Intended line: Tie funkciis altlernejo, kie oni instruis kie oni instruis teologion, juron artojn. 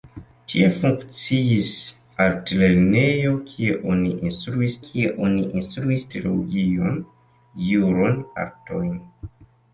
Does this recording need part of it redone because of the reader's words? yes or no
no